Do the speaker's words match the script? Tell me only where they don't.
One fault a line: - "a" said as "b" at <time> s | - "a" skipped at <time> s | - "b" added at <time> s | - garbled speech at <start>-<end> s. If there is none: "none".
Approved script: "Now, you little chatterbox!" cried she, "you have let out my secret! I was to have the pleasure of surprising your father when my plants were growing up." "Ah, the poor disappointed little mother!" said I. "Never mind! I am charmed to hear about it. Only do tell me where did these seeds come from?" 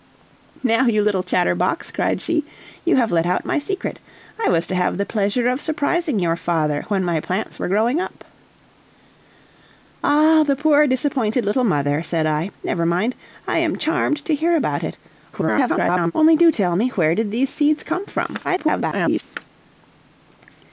- garbled speech at 15.3-16.1 s
- garbled speech at 18.4-19.2 s